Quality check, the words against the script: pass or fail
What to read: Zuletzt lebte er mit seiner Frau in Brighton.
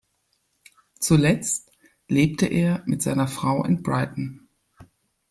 pass